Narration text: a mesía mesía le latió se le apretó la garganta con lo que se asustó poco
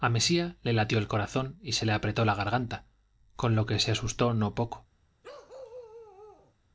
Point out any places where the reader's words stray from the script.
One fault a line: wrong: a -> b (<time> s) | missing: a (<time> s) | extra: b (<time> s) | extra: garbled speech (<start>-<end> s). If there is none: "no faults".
missing: mesía (0.6 s)
extra: el corazón y (1.0 s)
extra: no (4.3 s)